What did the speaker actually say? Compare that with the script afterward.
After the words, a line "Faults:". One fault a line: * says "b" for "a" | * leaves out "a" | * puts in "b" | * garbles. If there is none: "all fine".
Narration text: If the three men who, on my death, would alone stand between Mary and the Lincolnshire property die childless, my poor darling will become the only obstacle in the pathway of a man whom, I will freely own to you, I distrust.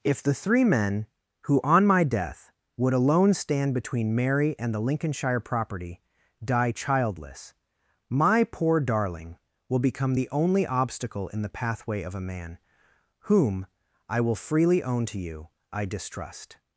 If the three men who, on my death, would alone stand between Mary and the Lincolnshire property die childless, my poor darling will become the only obstacle in the pathway of a man whom, I will freely own to you, I distrust.
Faults:
all fine